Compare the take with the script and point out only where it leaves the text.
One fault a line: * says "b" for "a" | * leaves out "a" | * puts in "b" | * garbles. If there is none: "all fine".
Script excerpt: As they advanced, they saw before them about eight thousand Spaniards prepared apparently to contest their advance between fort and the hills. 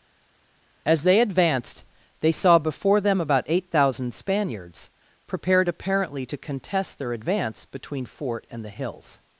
all fine